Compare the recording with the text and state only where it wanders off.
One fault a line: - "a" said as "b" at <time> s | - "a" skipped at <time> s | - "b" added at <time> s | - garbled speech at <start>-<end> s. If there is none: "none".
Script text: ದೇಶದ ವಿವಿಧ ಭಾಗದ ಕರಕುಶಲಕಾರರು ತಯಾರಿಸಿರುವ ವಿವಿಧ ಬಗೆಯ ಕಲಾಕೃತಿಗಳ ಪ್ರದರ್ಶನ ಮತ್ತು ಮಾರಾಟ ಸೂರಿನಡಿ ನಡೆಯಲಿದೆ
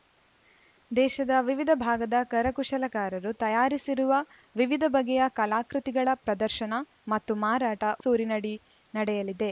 none